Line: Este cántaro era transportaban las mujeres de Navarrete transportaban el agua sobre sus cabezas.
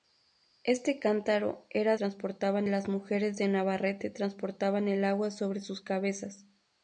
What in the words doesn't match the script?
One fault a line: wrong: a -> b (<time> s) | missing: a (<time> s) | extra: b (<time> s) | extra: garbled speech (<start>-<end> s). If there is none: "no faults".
no faults